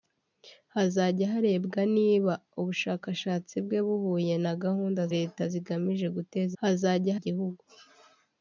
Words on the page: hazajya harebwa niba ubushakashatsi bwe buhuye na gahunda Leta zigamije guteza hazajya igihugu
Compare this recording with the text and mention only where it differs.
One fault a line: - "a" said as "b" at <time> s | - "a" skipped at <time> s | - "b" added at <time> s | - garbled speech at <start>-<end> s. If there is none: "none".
none